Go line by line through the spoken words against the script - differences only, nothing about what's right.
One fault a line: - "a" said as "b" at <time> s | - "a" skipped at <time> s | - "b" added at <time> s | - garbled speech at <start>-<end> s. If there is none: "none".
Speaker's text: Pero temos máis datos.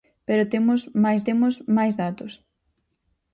- "temos máis" added at 1.3 s